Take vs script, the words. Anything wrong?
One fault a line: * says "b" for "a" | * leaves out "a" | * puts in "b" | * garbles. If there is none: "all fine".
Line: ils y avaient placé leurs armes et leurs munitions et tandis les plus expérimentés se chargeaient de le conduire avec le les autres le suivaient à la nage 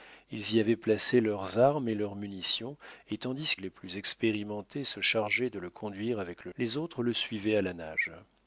all fine